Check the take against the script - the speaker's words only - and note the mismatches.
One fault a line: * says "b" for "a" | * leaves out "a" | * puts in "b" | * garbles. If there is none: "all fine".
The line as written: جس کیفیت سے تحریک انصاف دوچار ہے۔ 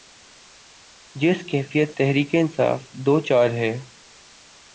* leaves out "سے"